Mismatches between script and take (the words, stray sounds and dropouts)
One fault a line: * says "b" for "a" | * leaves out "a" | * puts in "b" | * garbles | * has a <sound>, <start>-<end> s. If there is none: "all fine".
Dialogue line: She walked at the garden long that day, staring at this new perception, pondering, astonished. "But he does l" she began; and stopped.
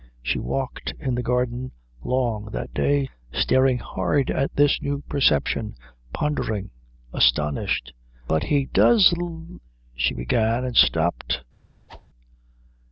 * says "in" for "at"
* puts in "hard"
* has a whoosh, 11.9-12.1 s